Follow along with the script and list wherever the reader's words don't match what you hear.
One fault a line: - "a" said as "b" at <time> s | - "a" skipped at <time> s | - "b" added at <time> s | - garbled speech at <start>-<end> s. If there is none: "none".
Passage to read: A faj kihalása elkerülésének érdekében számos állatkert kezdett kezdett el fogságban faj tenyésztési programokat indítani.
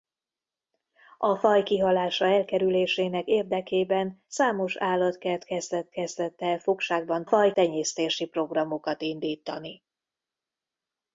none